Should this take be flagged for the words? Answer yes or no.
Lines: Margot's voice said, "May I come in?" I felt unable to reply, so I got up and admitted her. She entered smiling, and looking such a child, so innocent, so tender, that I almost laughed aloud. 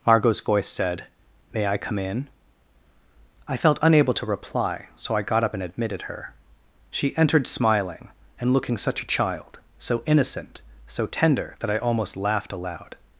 no